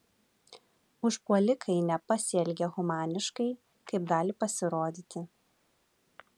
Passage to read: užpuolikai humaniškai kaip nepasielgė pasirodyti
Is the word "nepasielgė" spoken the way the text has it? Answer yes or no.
no